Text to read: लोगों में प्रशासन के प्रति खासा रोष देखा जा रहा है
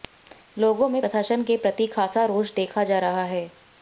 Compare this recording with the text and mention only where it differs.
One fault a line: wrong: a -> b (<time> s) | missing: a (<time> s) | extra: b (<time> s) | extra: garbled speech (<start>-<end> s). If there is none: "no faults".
no faults